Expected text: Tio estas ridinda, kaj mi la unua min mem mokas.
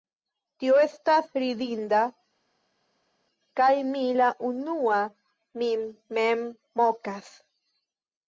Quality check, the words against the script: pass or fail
pass